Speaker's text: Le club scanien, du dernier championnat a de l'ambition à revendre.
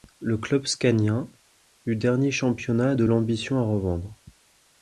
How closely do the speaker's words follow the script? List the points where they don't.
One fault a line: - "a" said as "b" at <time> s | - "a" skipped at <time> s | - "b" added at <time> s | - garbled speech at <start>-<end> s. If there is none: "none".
none